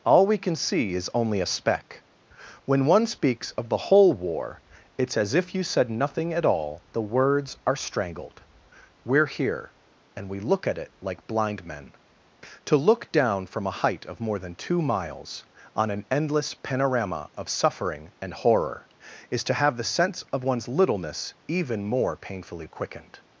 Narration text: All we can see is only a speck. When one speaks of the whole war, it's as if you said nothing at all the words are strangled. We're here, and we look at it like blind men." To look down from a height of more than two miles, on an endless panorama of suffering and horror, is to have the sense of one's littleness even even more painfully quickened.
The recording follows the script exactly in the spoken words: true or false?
false